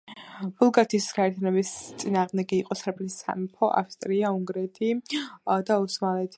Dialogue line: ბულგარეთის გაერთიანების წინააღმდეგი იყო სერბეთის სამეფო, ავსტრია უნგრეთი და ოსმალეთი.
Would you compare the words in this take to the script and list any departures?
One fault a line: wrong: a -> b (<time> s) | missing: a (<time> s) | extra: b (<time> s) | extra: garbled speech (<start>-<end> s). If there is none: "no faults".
no faults